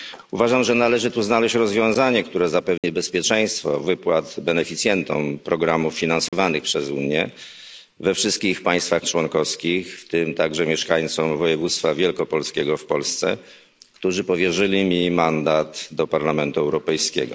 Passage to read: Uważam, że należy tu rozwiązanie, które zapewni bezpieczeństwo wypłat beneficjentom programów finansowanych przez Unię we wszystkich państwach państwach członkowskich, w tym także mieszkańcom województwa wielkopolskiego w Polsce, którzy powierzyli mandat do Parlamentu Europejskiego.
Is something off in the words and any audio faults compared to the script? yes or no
yes